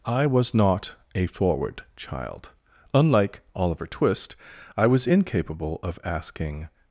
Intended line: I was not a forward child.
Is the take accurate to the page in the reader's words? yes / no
no